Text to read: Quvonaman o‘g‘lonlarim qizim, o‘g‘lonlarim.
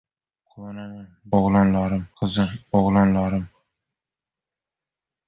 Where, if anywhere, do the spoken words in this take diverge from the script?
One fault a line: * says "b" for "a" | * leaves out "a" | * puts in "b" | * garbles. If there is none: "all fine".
all fine